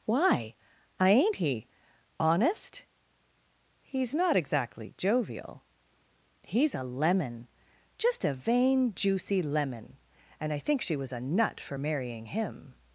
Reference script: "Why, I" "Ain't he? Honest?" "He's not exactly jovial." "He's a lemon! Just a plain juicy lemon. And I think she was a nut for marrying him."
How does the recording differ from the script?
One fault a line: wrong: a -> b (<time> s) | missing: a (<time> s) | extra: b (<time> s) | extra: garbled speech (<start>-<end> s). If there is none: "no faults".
wrong: plain -> vain (8.3 s)